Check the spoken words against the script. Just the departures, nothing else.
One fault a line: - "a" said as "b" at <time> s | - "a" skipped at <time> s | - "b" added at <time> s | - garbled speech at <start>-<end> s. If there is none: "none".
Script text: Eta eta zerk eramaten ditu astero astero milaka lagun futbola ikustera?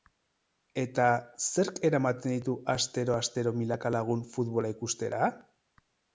- "eta" skipped at 1.1 s